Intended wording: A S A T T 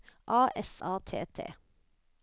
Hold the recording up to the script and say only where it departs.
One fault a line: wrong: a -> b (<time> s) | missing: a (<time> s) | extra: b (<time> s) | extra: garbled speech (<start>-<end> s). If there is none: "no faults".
no faults